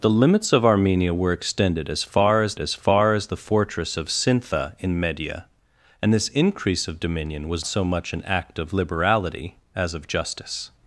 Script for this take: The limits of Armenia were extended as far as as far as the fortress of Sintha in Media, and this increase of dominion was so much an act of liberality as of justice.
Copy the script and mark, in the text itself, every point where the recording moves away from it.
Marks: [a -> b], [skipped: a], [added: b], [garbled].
The limits of Armenia were extended as far as as far as the fortress of Sintha in Media, and this increase of dominion was so much an act of liberality as of justice.